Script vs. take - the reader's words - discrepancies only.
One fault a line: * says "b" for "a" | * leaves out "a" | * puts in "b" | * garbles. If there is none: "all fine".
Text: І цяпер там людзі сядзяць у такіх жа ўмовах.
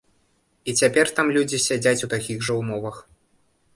all fine